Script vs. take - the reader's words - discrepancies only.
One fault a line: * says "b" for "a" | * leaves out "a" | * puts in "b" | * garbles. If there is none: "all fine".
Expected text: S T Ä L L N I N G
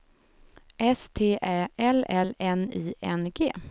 all fine